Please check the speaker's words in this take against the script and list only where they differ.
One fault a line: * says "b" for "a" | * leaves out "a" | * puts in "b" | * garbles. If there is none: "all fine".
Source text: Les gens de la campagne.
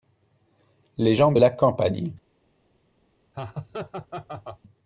all fine